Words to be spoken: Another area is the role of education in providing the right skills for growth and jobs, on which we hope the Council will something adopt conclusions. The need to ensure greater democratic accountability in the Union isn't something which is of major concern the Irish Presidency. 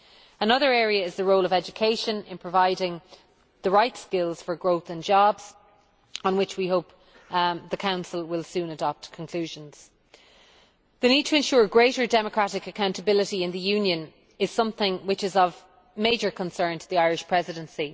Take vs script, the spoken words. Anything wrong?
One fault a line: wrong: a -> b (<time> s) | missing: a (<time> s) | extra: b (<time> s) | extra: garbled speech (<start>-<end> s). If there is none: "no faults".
wrong: something -> soon (8.4 s)
wrong: isn't -> is (14.4 s)
extra: to (16.8 s)